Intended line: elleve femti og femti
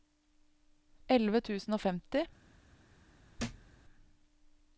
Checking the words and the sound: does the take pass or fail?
fail